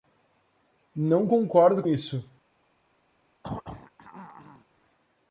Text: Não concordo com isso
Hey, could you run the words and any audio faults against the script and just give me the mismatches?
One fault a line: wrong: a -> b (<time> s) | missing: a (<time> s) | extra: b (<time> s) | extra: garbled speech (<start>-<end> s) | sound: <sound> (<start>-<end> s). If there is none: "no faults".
missing: com (1.8 s)
sound: throat clearing (3.4-4.6 s)